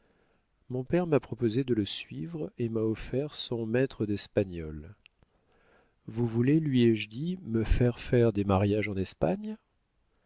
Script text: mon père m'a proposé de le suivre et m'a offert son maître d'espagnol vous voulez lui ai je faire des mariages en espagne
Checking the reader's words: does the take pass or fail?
fail